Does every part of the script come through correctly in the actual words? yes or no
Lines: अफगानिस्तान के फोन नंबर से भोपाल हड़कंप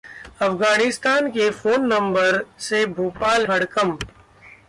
yes